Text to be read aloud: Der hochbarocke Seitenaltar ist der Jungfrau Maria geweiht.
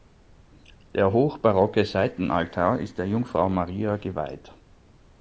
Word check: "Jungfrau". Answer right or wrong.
right